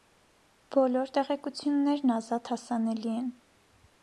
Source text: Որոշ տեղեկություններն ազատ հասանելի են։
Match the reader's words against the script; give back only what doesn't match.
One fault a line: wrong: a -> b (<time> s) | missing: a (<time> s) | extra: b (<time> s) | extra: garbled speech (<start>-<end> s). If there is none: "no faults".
wrong: Որոշ -> Բոլոր (0.8 s)